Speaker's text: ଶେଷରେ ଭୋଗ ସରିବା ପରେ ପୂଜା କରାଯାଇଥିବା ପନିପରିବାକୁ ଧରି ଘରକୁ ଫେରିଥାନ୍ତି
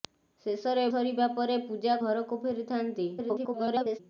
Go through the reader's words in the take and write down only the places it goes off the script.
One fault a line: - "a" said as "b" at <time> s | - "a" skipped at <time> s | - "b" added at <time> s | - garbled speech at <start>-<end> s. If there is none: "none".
- "ଭୋଗ" skipped at 0.8 s
- "କରାଯାଇଥିବା ପନିପରିବାକୁ ଧରି" skipped at 2.0 s
- garbled speech at 3.2-4.0 s